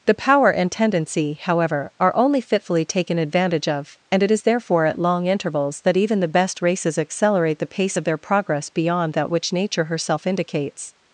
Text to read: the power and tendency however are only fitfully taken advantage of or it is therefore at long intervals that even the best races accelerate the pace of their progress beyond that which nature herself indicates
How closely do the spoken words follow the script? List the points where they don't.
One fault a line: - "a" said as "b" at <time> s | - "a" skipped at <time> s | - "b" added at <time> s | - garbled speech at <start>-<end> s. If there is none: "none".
- "or" said as "and" at 4.1 s